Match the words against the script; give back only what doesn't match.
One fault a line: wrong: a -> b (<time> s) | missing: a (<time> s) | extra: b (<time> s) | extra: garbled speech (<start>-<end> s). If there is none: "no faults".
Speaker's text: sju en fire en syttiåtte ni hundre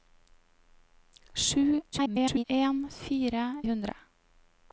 extra: garbled speech (1.9-2.4 s)
missing: en syttiåtte ni (3.6 s)